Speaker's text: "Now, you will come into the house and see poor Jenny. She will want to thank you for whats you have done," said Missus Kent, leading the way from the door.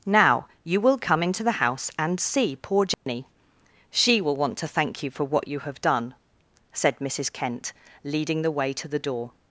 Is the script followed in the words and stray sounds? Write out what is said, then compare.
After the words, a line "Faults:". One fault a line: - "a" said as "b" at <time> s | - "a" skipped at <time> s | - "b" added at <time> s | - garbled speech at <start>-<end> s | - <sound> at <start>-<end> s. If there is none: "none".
"Now, you will come into the house and see poor Jenny. She will want to thank you for what you have done," said Missus Kent, leading the way to the door.
Faults:
- dropout at 2.9-3.1 s
- "whats" said as "what" at 5.2 s
- "from" said as "to" at 8.7 s